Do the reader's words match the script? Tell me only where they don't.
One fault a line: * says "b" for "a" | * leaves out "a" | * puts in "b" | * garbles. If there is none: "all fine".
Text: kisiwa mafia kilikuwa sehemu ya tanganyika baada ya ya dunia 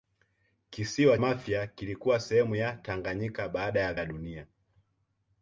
all fine